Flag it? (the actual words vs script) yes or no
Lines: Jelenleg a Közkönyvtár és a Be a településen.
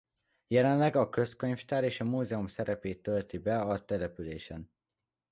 yes